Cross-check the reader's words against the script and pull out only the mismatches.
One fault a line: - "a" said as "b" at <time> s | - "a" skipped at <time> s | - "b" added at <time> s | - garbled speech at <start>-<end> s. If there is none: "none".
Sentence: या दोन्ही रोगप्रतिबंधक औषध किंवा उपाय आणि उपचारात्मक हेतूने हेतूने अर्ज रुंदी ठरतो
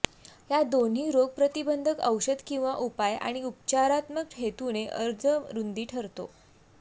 - "हेतूने" skipped at 4.9 s